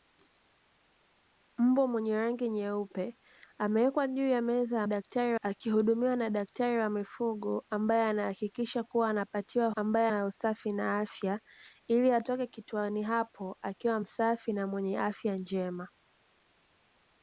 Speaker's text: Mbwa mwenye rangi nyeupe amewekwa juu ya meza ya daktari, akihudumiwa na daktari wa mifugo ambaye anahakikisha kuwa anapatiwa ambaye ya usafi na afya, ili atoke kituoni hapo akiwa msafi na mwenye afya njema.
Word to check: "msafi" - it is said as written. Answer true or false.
true